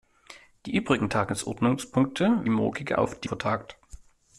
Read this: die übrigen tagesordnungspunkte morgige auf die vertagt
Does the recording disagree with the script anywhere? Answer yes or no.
no